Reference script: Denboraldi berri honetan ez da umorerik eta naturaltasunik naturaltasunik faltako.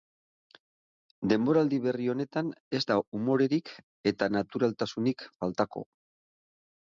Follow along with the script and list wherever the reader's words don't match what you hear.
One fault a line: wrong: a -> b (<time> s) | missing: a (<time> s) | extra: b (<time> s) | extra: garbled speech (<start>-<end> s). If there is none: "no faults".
missing: naturaltasunik (5.2 s)